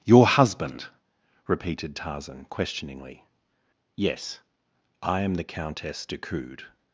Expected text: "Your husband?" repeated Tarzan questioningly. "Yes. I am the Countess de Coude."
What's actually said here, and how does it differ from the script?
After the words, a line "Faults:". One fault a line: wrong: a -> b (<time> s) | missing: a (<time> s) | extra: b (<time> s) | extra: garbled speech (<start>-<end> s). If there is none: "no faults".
"Your husband?" repeated Tarzan questioningly. "Yes. I am the Countess de Coude."
Faults:
no faults